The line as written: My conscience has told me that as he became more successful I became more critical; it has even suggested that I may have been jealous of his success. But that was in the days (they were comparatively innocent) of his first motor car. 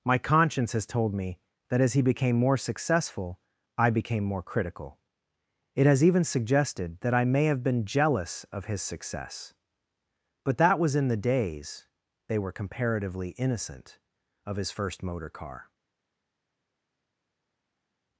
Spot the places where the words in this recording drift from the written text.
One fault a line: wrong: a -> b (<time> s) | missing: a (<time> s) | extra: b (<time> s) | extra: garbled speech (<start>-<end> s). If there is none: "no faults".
no faults